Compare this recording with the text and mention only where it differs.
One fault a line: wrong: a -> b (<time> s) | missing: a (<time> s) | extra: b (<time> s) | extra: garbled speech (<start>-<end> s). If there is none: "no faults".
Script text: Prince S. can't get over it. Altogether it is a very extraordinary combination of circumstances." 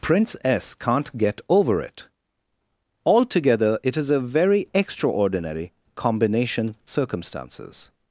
missing: of (6.8 s)